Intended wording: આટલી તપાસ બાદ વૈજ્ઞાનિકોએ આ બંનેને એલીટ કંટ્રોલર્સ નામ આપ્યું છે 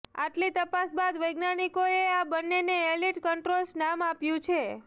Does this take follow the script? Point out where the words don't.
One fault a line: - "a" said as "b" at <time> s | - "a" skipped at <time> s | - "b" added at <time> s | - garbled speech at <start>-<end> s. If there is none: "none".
none